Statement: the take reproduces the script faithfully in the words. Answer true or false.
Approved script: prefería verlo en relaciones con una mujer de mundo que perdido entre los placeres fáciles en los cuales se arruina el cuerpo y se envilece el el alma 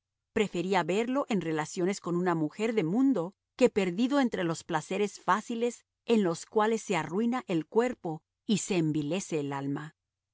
false